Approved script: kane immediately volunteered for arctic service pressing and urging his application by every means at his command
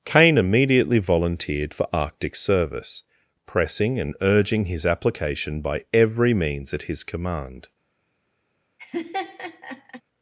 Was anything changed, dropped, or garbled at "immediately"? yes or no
no